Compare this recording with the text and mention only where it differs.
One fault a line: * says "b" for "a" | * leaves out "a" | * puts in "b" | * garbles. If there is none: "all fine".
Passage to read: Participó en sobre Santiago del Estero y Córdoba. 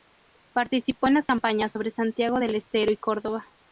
* puts in "las campañas"